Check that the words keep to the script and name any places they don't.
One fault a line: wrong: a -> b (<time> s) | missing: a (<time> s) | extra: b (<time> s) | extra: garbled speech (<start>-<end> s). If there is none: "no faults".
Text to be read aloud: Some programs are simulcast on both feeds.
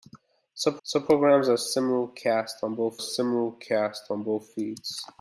extra: some (0.8 s)
extra: simulcast on both (2.9 s)